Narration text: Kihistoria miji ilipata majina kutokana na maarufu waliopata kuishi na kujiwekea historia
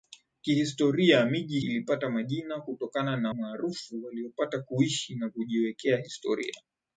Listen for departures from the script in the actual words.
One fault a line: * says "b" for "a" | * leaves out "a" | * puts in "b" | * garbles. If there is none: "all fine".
all fine